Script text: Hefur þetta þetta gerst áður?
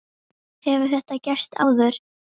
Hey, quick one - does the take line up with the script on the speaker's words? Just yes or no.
no